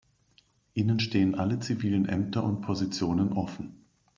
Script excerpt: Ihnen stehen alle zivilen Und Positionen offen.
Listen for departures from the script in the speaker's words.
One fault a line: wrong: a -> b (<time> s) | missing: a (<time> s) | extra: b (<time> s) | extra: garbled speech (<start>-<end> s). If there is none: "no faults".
extra: Ämter (2.1 s)